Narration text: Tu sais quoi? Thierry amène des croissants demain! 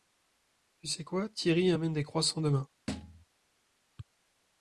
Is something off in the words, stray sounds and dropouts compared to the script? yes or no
yes